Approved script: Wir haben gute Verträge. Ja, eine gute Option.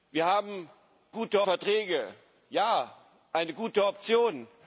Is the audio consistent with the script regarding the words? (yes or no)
yes